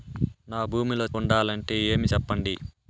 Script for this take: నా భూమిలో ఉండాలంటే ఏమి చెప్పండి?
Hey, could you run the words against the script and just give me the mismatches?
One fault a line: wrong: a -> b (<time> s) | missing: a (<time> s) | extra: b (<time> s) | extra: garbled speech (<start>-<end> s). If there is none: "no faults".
no faults